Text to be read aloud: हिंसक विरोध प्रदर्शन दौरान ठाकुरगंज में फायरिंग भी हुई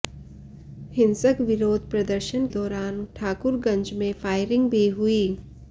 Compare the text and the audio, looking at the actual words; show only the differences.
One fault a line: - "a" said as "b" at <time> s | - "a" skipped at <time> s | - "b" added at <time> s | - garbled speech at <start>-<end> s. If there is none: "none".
none